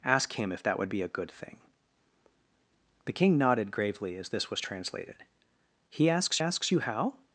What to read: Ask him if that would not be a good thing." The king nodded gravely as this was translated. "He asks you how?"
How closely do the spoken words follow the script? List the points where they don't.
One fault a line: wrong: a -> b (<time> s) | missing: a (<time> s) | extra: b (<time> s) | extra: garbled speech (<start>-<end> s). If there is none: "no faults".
missing: not (0.9 s)
extra: asks (6.4 s)